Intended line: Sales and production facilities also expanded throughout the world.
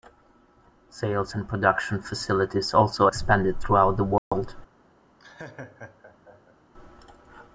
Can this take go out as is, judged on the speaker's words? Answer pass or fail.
pass